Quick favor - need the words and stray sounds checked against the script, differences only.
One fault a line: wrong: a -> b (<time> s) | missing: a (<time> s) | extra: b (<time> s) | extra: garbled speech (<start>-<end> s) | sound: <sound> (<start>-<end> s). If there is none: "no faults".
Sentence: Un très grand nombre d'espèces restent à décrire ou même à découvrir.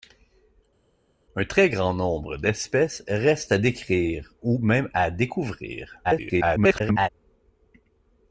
extra: garbled speech (6.0-7.1 s)